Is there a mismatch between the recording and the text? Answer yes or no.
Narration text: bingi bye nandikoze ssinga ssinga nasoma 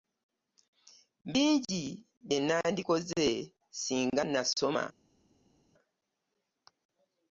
yes